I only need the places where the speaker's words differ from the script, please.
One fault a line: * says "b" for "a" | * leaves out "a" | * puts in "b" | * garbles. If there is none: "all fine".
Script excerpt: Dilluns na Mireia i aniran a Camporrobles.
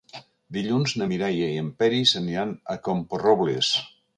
* puts in "en Peris"